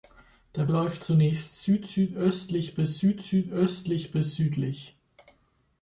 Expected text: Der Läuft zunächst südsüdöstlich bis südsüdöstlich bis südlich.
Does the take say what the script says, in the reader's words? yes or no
yes